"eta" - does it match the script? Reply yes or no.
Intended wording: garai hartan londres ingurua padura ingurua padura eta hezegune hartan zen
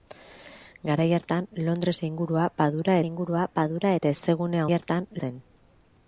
yes